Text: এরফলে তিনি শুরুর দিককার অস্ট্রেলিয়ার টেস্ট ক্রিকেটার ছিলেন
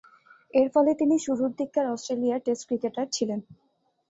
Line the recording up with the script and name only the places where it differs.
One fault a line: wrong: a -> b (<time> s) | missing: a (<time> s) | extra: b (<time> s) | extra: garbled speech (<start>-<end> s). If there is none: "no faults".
no faults